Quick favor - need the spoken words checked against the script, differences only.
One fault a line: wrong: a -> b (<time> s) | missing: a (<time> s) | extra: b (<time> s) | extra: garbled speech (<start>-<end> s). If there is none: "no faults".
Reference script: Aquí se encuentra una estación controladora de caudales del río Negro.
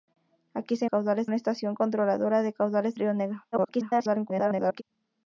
wrong: encuentra -> caudales (0.9 s)
missing: del (2.9 s)
extra: garbled speech (3.5-4.8 s)